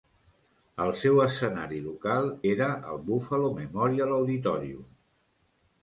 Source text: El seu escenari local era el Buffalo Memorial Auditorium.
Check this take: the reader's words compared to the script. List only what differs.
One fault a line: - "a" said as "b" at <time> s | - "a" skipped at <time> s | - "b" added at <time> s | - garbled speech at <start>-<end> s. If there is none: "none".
none